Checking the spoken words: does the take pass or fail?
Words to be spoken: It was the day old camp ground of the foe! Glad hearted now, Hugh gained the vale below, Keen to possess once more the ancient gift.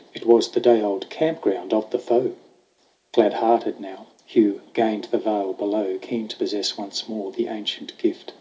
pass